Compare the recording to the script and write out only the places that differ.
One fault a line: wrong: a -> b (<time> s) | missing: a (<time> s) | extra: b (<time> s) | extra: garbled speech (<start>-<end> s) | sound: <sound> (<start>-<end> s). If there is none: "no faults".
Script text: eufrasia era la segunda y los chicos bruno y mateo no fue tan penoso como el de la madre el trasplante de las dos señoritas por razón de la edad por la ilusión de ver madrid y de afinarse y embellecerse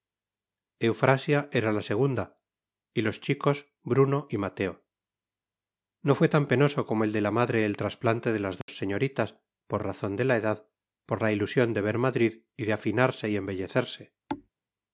sound: dropout (8.6-8.7 s)
sound: thud (14.3-14.5 s)